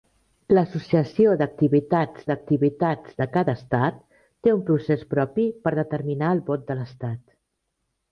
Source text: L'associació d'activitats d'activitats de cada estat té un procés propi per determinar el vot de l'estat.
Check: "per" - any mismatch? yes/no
no